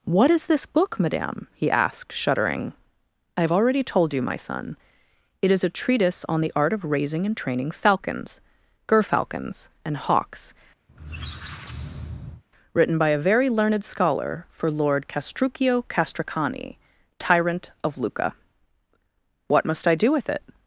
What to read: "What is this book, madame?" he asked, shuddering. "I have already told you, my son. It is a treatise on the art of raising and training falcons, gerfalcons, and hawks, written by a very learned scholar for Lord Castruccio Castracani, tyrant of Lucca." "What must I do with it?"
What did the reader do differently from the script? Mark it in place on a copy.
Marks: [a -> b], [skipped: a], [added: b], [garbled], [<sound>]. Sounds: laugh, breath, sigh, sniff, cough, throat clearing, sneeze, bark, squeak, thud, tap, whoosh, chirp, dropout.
"What is this book, madame?" he asked, shuddering. "I have already told you, my son. It is a treatise on the art of raising and training falcons, gerfalcons, and hawks, [squeak] written by a very learned scholar for Lord Castruccio Castracani, tyrant of Lucca." "What must I do with it?"